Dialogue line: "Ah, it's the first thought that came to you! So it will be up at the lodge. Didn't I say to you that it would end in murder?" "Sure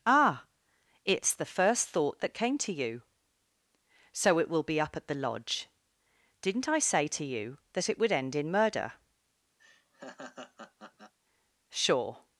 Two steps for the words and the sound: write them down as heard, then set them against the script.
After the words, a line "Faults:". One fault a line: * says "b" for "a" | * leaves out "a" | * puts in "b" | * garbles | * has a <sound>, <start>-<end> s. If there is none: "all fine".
"Ah, it's the first thought that came to you! So it will be up at the lodge. Didn't I say to you that it would end in murder?" "Sure
Faults:
* has a laugh, 9.6-11.1 s